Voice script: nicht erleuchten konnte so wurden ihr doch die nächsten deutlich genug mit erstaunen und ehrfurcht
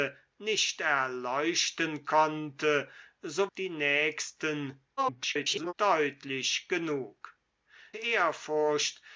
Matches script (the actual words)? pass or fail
fail